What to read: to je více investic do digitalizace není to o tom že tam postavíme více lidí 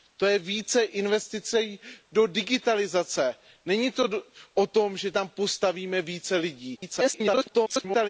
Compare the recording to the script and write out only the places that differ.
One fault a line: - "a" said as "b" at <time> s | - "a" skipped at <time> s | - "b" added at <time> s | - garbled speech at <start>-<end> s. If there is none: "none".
- garbled speech at 6.8-8.1 s